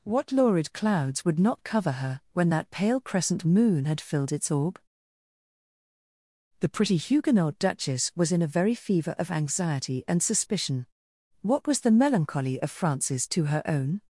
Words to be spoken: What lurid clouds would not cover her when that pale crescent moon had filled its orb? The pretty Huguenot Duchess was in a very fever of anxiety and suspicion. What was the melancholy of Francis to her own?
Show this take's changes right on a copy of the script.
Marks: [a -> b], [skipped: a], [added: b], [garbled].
What lurid clouds would not cover her when that pale crescent moon had filled its orb? The pretty Huguenot Duchess was in a very fever of anxiety and suspicion. What was the melancholy of Francis to her own?